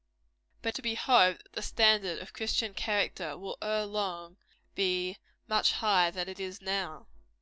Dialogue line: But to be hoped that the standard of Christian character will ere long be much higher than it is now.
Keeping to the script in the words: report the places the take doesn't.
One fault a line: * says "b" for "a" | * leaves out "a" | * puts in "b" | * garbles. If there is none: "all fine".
all fine